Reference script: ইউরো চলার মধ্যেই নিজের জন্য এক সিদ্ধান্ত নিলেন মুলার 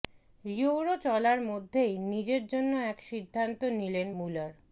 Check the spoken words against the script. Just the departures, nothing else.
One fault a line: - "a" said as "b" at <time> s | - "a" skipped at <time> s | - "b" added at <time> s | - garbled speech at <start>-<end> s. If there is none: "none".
none